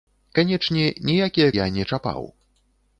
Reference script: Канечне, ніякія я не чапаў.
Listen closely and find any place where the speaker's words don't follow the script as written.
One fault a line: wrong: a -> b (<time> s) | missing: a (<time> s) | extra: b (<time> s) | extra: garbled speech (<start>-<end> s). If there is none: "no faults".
no faults